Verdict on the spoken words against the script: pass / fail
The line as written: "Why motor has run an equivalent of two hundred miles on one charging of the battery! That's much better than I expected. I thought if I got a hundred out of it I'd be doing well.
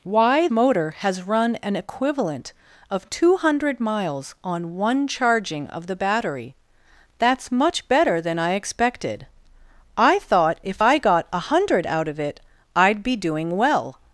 pass